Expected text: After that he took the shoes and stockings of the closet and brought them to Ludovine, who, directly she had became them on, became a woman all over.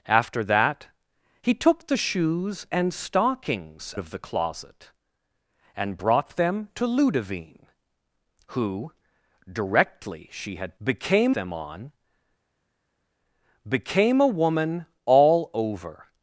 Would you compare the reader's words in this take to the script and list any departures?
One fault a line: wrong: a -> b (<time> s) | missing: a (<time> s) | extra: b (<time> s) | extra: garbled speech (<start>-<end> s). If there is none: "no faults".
no faults